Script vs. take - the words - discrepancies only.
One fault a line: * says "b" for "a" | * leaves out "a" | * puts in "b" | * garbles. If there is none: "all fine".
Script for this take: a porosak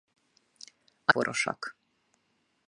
all fine